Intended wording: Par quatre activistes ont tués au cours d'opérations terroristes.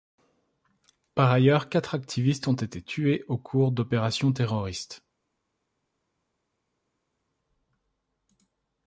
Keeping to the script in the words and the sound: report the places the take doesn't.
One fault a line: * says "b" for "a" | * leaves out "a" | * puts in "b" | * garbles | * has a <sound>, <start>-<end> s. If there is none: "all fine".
* puts in "ailleurs"
* puts in "été"